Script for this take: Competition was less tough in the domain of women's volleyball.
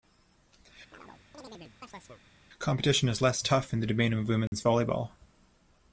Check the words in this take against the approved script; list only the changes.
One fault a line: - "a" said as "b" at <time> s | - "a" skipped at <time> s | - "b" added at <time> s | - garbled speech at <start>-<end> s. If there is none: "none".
- "was" said as "is" at 3.1 s